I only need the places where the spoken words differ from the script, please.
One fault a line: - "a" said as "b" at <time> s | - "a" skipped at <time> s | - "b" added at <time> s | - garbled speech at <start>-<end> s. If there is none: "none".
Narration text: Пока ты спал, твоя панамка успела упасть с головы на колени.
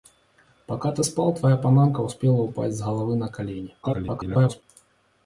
- garbled speech at 3.8-4.6 s